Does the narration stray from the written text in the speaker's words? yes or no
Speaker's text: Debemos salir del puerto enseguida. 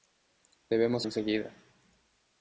yes